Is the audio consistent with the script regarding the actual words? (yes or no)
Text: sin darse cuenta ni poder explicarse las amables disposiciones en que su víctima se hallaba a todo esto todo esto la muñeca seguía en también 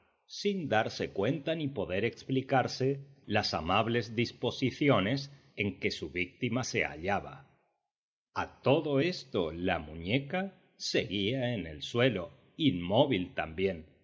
no